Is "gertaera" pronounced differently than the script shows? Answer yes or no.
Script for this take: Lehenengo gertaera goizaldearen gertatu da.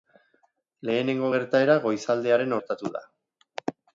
no